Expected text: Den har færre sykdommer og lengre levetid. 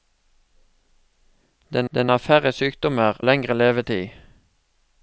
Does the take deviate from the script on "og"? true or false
true